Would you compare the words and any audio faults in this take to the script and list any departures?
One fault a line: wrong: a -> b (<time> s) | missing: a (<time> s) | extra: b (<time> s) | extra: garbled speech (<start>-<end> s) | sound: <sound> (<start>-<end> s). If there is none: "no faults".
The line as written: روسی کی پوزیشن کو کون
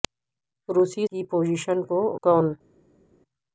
no faults